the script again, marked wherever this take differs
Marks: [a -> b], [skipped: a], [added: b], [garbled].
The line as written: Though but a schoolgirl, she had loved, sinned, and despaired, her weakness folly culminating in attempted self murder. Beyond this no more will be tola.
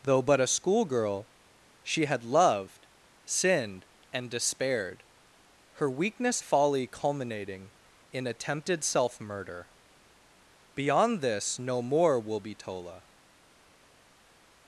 Though but a schoolgirl, she had loved, sinned, and despaired, her weakness folly culminating in attempted self murder. Beyond this no more will be tola.